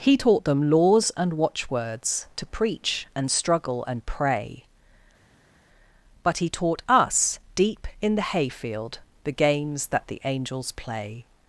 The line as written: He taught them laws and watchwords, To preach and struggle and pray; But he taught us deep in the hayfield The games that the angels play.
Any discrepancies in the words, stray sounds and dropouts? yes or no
no